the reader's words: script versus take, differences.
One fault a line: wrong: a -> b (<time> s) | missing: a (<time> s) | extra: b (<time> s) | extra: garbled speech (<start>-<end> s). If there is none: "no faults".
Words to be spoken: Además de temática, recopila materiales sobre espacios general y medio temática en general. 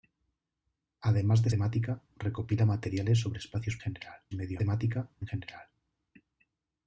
no faults